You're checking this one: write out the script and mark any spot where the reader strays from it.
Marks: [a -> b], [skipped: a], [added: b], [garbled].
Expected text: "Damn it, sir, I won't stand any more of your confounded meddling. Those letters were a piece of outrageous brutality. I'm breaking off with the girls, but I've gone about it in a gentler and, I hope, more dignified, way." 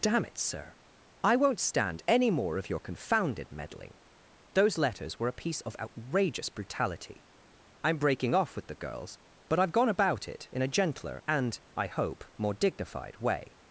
"Damn it, sir, I won't stand any more of your confounded meddling. Those letters were a piece of outrageous brutality. I'm breaking off with the girls, but I've gone about it in a gentler and, I hope, more dignified, way."